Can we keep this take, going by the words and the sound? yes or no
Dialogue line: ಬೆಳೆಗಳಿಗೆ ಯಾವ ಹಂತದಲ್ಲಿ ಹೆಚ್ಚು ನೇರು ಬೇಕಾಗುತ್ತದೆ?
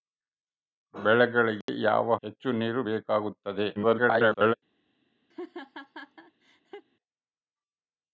no